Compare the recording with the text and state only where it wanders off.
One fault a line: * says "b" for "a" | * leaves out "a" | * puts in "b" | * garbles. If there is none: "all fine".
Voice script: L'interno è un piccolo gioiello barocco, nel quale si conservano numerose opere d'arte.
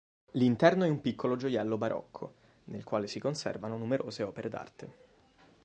all fine